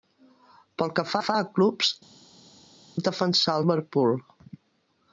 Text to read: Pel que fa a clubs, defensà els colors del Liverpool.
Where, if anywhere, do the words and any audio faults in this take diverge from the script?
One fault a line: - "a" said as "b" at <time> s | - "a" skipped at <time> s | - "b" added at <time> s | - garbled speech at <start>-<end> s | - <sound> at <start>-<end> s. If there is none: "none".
- "fa" added at 1.2 s
- "els colors del" skipped at 3.6 s